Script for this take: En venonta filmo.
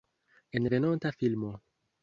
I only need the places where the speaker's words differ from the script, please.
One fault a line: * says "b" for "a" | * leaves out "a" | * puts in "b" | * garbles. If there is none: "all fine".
all fine